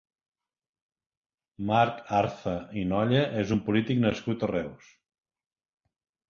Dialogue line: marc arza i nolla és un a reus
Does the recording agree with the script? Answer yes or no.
no